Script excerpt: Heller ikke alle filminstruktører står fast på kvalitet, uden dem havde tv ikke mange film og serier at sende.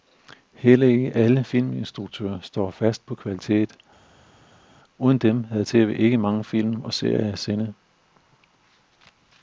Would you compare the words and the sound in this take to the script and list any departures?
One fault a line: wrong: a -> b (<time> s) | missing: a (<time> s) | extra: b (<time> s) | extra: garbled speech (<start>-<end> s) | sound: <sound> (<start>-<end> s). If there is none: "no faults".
no faults